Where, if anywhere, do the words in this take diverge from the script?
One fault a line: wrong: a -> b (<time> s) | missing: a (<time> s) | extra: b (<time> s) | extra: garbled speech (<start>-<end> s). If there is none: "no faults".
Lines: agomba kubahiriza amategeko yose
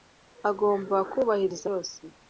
missing: amategeko (1.7 s)